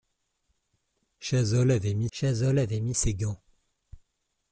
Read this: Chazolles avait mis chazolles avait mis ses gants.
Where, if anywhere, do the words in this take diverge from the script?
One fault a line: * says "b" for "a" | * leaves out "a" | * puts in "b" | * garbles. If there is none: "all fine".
all fine